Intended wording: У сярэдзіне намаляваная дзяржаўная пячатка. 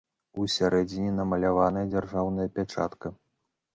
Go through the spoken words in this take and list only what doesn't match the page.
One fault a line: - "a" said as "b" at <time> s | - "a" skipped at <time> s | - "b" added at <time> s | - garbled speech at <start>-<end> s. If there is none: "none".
none